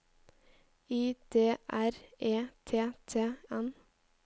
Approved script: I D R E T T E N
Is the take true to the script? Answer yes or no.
no